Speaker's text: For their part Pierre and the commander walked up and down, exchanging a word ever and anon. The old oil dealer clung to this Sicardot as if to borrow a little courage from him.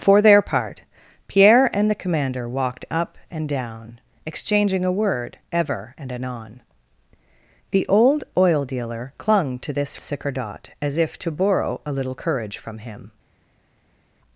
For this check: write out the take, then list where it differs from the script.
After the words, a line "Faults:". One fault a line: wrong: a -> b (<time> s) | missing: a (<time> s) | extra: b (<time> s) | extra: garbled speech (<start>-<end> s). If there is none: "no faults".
For their part Pierre and the commander walked up and down, exchanging a word ever and anon. The old oil dealer clung to this Sicardot as if to borrow a little courage from him.
Faults:
no faults